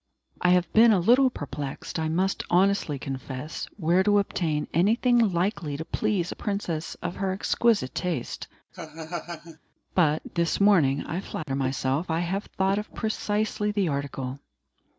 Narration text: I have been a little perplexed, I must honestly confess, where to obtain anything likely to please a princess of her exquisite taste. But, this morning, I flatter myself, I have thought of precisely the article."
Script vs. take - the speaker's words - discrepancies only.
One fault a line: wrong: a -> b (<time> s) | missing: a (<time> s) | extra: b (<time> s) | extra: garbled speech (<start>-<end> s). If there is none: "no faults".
no faults